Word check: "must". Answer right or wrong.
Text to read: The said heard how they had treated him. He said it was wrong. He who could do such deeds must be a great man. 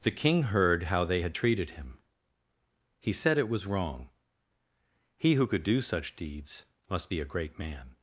right